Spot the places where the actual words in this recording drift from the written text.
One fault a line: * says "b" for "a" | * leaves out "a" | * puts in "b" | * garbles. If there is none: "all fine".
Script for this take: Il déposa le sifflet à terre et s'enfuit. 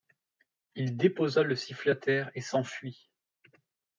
all fine